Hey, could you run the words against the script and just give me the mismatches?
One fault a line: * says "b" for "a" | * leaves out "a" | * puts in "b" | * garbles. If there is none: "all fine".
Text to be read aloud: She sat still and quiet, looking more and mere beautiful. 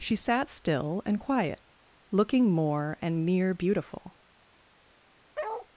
all fine